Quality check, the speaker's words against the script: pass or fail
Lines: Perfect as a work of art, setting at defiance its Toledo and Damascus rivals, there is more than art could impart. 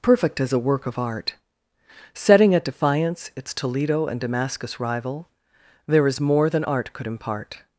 fail